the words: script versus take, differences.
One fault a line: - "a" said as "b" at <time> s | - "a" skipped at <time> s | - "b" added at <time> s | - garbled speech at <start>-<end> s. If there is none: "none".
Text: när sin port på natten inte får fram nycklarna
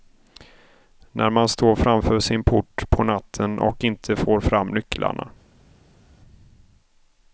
- "man står framför" added at 1.3 s
- "och" added at 3.6 s